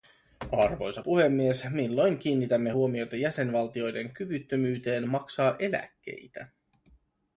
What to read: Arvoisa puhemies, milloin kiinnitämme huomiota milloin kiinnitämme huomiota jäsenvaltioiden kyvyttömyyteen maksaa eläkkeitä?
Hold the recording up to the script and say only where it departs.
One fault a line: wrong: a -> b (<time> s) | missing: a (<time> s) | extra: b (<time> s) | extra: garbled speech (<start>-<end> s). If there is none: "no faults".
missing: milloin kiinnitämme huomiota (3.2 s)